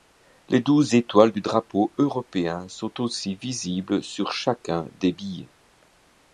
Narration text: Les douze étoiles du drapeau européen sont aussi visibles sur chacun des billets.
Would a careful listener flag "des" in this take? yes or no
no